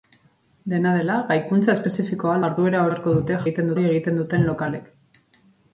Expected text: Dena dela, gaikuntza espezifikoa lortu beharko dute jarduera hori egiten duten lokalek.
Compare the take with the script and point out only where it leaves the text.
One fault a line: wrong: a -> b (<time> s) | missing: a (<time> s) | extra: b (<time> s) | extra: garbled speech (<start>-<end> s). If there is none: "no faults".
wrong: lortu -> jarduera (2.4 s)
wrong: jarduera -> egiten (3.5 s)